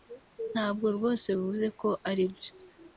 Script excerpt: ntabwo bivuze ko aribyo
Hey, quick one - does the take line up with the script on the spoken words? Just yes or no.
no